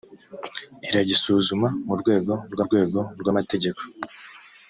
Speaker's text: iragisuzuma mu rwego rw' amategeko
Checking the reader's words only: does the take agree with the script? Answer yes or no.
no